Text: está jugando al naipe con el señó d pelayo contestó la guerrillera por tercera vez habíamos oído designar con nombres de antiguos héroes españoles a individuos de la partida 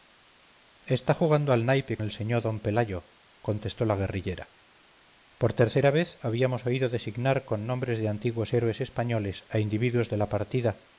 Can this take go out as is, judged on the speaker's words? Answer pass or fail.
fail